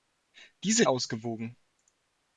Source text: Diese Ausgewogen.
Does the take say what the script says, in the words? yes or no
yes